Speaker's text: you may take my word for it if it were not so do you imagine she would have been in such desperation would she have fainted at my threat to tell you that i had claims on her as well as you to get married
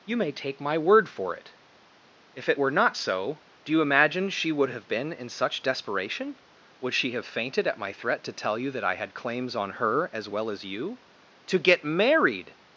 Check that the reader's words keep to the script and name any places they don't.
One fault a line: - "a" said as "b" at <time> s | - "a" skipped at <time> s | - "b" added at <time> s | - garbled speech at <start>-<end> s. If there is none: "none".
none